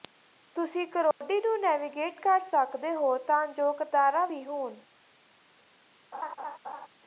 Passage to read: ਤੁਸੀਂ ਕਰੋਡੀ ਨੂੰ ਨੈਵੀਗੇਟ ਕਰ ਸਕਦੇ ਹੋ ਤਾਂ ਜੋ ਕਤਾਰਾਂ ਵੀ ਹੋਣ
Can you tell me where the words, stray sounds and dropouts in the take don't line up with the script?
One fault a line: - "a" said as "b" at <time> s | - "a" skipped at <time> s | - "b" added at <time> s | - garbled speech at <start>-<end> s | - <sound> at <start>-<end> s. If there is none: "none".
- dropout at 1.1-1.2 s
- laugh at 6.1-6.9 s